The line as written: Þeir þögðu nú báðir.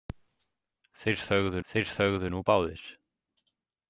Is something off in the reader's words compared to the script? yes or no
yes